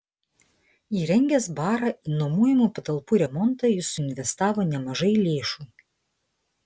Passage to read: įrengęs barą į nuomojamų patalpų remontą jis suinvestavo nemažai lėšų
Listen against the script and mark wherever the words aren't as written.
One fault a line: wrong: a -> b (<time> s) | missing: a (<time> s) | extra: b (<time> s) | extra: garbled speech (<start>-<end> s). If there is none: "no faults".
no faults